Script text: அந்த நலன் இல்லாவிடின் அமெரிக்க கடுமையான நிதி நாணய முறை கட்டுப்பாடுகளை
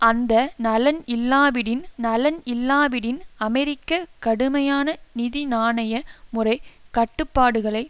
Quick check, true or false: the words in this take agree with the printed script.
false